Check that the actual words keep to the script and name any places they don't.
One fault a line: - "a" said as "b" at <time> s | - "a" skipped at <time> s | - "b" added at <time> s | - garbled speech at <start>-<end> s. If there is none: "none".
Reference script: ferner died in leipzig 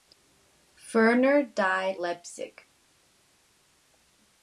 - "in" skipped at 2.0 s